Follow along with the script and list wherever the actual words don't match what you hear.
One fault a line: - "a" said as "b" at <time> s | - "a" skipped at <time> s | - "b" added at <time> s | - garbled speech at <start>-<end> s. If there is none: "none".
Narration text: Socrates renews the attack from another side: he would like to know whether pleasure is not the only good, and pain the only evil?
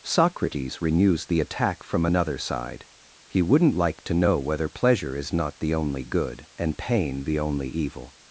- "would" said as "wouldn't" at 3.4 s